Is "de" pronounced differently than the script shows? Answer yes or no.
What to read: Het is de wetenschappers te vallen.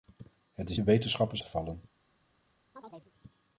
no